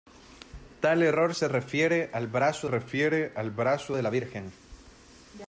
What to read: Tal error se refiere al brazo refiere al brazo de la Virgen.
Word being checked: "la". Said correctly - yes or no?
yes